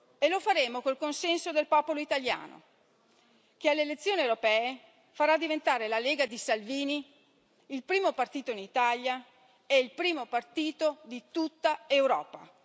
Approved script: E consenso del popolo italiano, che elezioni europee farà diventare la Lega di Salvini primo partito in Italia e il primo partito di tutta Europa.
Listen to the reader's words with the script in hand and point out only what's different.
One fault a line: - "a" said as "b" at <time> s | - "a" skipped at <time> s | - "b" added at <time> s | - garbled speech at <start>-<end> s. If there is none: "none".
- "lo faremo col" added at 0.3 s
- "alle" added at 3.7 s
- "il" added at 7.7 s